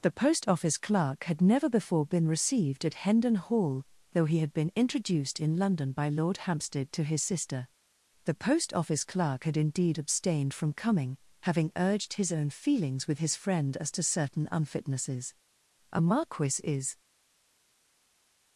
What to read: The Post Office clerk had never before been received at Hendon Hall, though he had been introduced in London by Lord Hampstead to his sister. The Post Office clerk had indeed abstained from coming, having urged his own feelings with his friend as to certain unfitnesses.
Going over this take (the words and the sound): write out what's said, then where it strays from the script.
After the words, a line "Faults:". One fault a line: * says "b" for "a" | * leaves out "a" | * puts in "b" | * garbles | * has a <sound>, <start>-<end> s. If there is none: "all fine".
The Post Office clerk had never before been received at Hendon Hall, though he had been introduced in London by Lord Hampstead to his sister. The Post Office clerk had indeed abstained from coming, having urged his own feelings with his friend as to certain unfitnesses. "A Marquis is
Faults:
* puts in "A Marquis is"